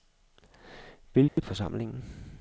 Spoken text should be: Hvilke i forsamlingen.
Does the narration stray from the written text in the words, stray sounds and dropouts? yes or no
yes